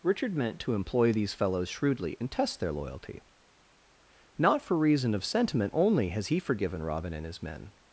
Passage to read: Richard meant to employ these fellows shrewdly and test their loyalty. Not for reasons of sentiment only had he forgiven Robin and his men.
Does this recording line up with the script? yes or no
no